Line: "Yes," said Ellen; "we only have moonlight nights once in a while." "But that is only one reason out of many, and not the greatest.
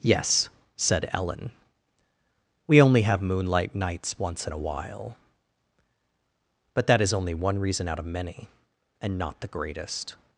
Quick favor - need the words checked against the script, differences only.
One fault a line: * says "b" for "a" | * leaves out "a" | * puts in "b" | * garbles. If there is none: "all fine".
all fine